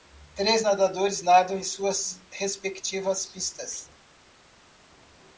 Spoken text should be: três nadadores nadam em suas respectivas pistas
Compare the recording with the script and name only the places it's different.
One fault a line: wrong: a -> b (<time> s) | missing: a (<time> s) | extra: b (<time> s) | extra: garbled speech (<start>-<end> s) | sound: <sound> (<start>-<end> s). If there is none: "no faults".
no faults